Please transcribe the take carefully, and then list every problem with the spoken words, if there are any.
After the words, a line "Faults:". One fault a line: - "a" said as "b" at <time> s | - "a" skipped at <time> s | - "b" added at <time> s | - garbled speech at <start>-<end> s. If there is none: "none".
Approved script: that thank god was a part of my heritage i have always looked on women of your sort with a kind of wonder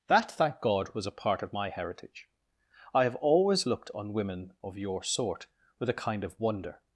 that thank god was a part of my heritage i have always looked on women of your sort with a kind of wonder
Faults:
none